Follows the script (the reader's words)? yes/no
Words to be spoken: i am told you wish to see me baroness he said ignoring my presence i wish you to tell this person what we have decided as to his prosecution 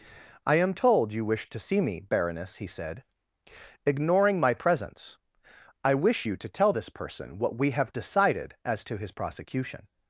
yes